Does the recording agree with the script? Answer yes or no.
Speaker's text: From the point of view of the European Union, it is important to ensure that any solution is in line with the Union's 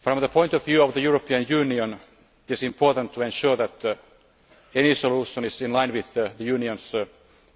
no